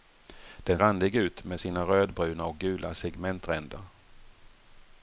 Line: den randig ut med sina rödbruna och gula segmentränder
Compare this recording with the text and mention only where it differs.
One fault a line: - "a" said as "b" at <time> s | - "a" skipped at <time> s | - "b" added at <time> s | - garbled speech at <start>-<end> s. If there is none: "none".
none